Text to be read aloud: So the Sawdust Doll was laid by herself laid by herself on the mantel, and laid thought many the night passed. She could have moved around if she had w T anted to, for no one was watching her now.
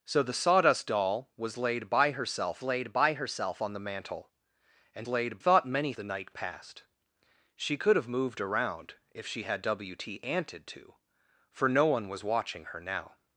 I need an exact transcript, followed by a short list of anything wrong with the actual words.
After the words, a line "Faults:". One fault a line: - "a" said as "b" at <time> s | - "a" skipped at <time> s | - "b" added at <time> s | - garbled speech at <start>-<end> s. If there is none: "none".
So the Sawdust Doll was laid by herself laid by herself on the mantel, and laid thought many the night passed. She could have moved around if she had w T anted to, for no one was watching her now.
Faults:
none